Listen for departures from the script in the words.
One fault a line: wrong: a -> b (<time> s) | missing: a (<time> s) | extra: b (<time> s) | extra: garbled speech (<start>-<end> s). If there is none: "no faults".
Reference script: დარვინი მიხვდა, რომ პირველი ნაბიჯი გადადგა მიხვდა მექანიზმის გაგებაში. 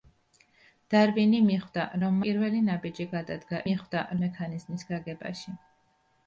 no faults